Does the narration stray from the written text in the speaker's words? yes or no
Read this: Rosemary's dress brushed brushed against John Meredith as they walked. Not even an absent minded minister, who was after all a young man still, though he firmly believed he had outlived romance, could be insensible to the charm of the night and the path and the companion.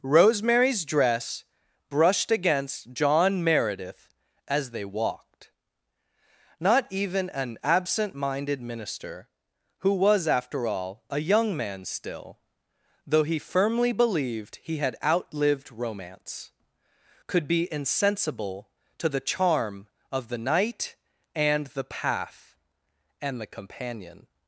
yes